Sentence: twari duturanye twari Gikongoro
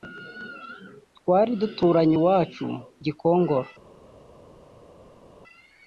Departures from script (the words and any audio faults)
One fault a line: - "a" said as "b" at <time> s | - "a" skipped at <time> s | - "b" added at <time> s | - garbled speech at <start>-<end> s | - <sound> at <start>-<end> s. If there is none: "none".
- "twari" said as "iwacu" at 2.2 s